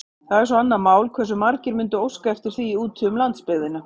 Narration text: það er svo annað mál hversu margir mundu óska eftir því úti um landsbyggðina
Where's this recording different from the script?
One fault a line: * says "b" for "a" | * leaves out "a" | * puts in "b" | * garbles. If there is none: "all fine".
all fine